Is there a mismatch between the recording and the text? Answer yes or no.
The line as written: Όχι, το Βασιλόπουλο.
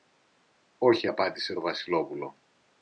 yes